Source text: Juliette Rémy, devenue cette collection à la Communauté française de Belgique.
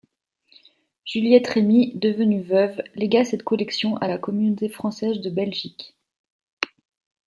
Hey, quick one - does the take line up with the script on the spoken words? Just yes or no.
no